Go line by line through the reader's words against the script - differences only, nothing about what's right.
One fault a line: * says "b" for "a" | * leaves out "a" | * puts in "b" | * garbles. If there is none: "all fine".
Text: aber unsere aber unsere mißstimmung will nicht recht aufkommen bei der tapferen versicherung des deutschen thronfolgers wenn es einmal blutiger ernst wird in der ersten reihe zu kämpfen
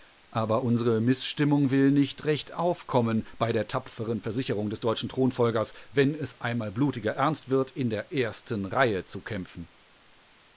* leaves out "aber unsere"